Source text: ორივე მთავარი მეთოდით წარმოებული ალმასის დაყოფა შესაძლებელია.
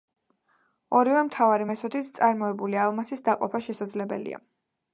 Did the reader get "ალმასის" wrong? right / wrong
right